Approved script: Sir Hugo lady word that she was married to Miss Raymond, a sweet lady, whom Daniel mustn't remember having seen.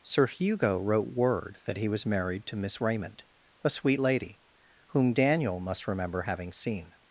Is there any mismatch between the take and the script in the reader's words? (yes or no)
yes